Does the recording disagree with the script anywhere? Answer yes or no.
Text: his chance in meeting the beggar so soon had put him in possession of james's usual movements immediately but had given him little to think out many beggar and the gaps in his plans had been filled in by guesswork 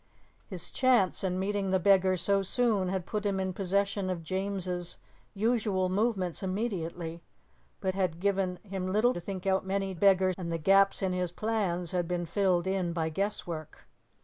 no